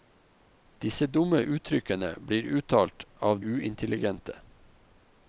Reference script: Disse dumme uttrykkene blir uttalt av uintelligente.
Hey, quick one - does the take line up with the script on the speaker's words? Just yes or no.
yes